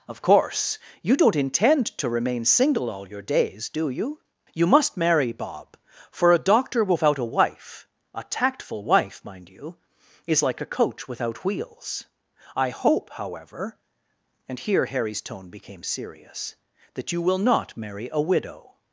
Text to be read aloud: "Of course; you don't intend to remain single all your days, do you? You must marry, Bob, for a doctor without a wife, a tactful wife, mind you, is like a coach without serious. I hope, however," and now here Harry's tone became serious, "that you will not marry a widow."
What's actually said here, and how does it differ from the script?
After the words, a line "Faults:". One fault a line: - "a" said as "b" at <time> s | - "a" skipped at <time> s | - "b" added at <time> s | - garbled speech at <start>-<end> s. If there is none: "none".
"Of course; you don't intend to remain single all your days, do you? You must marry, Bob, for a doctor without a wife, a tactful wife, mind you, is like a coach without wheels. I hope, however," and here Harry's tone became serious, "that you will not marry a widow."
Faults:
- "serious" said as "wheels" at 11.4 s
- "now" skipped at 14.6 s